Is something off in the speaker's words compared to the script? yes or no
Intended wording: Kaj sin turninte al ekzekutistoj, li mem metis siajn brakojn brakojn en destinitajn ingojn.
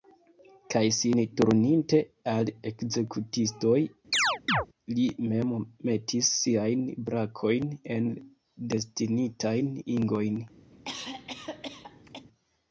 yes